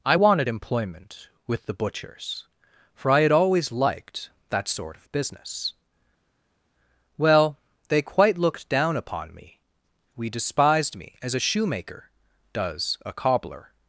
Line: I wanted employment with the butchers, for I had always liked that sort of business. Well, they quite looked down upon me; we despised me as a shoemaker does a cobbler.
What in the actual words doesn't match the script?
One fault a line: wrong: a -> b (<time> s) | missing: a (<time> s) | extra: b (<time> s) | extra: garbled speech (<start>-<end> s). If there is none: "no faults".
no faults